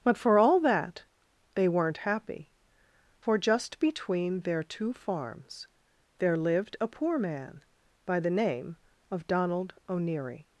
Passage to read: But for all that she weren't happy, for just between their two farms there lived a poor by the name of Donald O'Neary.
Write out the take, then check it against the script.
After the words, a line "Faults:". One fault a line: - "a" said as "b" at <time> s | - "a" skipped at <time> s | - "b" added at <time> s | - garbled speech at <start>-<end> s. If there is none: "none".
But for all that they weren't happy, for just between their two farms there lived a poor man by the name of Donald O'Neary.
Faults:
- "she" said as "they" at 1.6 s
- "man" added at 7.2 s